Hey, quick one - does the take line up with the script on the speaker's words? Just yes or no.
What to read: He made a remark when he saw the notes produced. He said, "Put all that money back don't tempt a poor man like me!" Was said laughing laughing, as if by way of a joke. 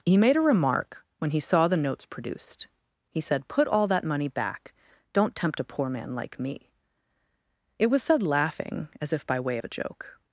no